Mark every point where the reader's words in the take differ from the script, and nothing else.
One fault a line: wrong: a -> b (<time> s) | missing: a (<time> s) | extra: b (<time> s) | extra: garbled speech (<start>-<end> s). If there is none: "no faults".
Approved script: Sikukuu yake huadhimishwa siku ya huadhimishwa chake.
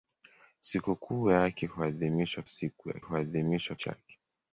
no faults